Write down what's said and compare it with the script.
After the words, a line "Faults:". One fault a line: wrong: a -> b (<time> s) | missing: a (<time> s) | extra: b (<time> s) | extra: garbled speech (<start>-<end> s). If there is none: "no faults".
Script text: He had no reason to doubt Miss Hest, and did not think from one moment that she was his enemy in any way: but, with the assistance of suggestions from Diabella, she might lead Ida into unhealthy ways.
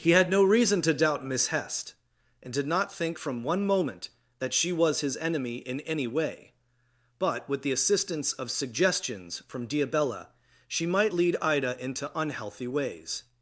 He had no reason to doubt Miss Hest, and did not think from one moment that she was his enemy in any way: but, with the assistance of suggestions from Diabella, she might lead Ida into unhealthy ways.
Faults:
no faults